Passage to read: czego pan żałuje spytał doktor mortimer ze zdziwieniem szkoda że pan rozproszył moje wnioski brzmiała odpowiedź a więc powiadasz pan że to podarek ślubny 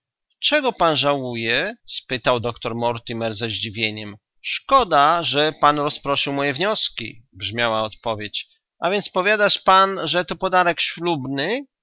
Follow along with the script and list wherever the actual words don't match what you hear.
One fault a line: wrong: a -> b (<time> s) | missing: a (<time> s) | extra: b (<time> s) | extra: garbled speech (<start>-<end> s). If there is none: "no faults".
no faults